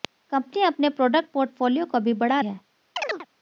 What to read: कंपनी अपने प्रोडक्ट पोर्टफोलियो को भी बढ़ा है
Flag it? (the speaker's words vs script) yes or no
no